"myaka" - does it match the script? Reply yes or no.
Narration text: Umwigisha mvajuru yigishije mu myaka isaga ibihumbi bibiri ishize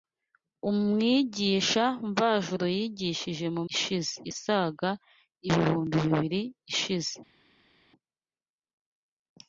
no